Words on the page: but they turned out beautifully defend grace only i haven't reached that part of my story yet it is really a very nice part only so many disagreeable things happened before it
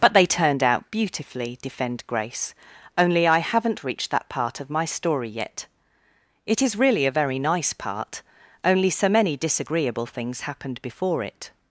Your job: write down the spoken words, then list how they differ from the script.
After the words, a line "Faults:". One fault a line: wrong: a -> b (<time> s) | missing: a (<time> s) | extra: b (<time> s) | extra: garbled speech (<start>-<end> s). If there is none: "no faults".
but they turned out beautifully defend grace only i haven't reached that part of my story yet it is really a very nice part only so many disagreeable things happened before it
Faults:
no faults